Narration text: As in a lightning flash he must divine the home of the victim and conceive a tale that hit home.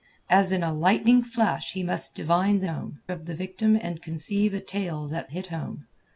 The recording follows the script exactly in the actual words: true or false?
true